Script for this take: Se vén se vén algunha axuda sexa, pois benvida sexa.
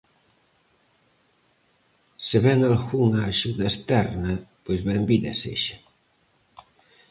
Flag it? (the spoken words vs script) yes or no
yes